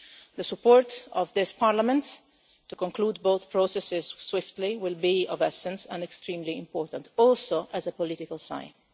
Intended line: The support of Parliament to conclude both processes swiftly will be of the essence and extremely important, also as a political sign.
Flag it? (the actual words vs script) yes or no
yes